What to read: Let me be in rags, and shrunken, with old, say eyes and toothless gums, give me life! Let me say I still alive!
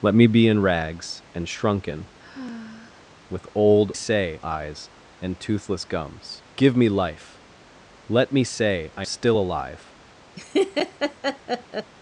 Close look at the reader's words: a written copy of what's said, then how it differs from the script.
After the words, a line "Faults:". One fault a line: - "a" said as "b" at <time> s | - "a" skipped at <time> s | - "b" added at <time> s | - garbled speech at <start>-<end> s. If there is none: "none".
Let me be in rags, and shrunken, with old, say eyes and toothless gums, give me life! Let me say I still alive!
Faults:
none